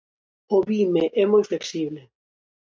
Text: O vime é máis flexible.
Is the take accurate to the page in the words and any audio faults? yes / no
no